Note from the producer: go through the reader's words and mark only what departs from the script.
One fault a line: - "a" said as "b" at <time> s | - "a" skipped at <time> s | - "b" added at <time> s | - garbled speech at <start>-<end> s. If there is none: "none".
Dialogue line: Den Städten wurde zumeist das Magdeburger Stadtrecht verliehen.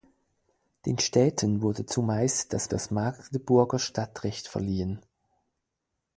- "das" added at 2.7 s